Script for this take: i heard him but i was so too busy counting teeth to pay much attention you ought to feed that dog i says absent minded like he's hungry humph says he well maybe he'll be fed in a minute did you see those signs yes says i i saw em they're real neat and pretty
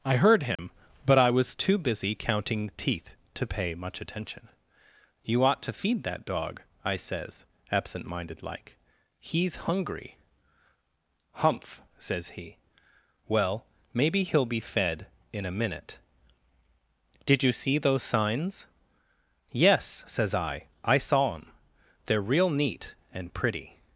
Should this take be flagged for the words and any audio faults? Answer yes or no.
yes